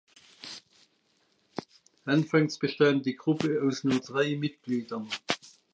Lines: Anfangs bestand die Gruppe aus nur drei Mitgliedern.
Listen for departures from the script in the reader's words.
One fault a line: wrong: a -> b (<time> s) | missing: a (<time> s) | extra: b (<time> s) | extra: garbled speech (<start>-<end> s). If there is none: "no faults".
no faults